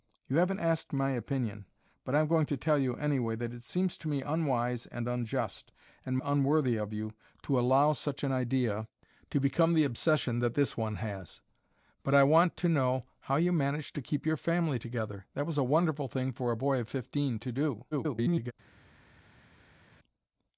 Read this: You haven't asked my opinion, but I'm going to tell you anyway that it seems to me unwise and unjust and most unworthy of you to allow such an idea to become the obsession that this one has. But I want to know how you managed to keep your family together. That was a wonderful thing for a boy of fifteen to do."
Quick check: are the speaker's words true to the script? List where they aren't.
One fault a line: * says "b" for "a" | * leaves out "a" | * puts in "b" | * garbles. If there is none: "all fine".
* leaves out "most"
* garbles